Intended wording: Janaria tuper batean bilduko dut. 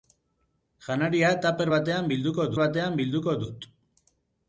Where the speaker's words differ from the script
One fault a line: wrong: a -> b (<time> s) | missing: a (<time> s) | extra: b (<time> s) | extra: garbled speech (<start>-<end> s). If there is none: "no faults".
extra: batean bilduko (2.6 s)